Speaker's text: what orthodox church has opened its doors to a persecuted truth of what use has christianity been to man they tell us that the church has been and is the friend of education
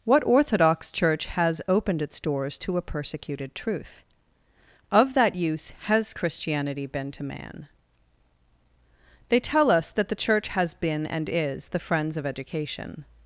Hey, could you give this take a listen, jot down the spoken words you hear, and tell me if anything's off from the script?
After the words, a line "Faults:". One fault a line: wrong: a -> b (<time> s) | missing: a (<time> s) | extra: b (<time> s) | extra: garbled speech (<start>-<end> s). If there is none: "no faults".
what orthodox church has opened its doors to a persecuted truth of that use has christianity been to man they tell us that the church has been and is the friends of education
Faults:
wrong: what -> that (5.1 s)
wrong: friend -> friends (11.8 s)